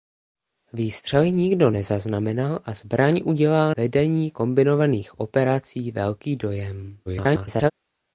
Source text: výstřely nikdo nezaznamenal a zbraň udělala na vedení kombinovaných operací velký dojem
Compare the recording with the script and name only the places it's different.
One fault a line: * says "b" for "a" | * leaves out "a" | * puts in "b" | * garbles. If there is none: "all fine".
* leaves out "na"
* garbles